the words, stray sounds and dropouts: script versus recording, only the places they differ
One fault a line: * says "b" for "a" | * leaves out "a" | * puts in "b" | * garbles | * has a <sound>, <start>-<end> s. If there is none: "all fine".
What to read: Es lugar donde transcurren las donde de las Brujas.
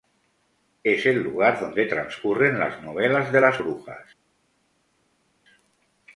* puts in "el"
* says "novelas" for "donde"